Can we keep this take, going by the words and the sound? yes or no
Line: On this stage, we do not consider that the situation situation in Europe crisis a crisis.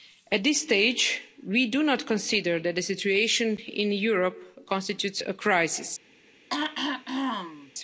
no